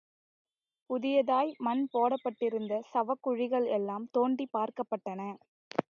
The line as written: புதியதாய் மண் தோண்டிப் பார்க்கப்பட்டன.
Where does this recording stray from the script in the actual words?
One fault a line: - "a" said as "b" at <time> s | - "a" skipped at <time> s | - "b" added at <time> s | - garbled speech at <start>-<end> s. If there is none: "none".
- "போடப்பட்டிருந்த சவக்குழிகள் எல்லாம்" added at 1.9 s